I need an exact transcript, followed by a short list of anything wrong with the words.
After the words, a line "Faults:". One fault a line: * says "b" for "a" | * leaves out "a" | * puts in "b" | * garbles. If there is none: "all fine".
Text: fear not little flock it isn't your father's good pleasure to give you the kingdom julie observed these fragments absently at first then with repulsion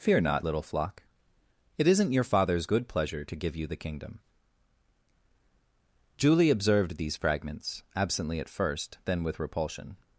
fear not little flock it isn't your father's good pleasure to give you the kingdom julie observed these fragments absently at first then with repulsion
Faults:
all fine